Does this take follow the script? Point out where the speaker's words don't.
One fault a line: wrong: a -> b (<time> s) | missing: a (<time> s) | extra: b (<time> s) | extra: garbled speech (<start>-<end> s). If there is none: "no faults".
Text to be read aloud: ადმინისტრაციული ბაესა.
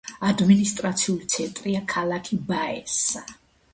extra: ცენტრია ქალაქი (1.3 s)